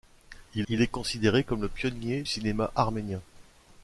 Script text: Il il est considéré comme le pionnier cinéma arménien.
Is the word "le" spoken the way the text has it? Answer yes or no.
yes